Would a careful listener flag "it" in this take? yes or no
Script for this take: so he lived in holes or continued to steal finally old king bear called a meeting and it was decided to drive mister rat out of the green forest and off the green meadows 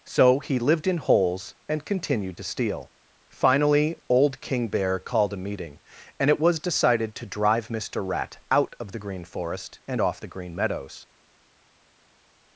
no